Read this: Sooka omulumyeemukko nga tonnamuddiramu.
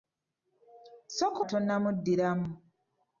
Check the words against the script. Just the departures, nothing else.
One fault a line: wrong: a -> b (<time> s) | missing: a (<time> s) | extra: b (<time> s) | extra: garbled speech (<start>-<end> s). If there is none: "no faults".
missing: omulumyeemukko nga (1.4 s)